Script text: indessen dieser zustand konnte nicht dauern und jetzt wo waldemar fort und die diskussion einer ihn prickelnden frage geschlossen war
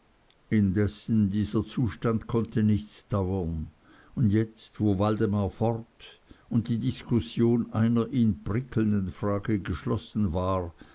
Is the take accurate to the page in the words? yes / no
yes